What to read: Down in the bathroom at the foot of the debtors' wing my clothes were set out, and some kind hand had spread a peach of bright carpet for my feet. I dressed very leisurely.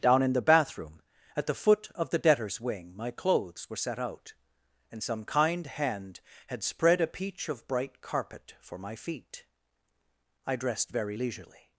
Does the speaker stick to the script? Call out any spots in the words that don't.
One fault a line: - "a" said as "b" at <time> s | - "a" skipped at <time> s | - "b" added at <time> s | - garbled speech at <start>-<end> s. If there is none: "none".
none